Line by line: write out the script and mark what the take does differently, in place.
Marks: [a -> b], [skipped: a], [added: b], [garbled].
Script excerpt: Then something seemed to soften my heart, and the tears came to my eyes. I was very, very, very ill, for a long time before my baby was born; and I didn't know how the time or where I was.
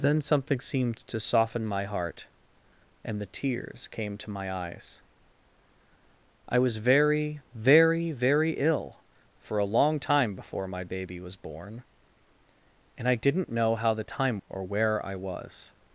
Then something seemed to soften my heart, and the tears came to my eyes. I was very, very, very ill, for a long time before my baby was born; and I didn't know how the time or where I was.